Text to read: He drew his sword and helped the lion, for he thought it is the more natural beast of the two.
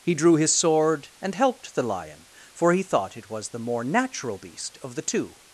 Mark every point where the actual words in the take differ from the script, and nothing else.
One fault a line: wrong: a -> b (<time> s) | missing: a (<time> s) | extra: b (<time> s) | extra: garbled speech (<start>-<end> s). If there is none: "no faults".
wrong: is -> was (3.3 s)